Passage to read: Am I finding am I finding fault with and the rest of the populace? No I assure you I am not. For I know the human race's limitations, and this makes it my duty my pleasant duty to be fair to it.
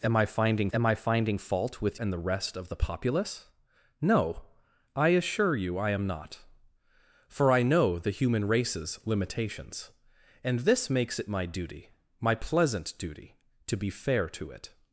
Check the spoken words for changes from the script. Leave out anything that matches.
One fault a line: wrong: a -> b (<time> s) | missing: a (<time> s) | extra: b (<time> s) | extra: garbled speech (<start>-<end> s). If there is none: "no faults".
no faults